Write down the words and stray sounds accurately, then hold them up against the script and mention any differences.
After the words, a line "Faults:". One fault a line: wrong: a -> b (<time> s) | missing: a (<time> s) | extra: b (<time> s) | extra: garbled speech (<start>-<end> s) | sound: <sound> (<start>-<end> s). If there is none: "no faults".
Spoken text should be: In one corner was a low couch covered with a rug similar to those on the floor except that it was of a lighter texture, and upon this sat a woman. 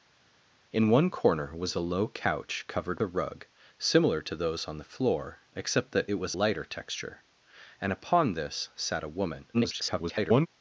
In one corner was a low couch covered a rug similar to those on the floor except that it was lighter texture, and upon this sat a woman. [garbled]
Faults:
missing: with (3.0 s)
missing: of a (6.3 s)
extra: garbled speech (9.5-10.5 s)